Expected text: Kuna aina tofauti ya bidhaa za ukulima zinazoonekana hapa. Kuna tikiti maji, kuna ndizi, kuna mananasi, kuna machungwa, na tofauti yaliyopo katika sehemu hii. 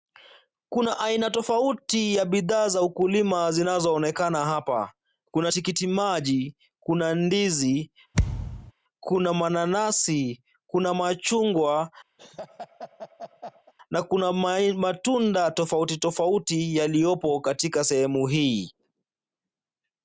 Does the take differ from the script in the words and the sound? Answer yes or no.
yes